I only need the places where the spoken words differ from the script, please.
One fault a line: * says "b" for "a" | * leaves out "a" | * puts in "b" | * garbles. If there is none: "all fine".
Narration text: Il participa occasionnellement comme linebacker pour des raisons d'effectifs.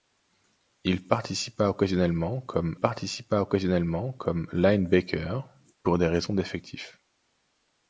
* puts in "participa occasionnellement comme"